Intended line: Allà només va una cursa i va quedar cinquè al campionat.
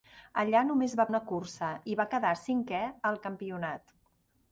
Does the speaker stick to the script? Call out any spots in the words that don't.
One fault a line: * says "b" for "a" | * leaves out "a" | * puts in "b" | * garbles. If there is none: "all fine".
all fine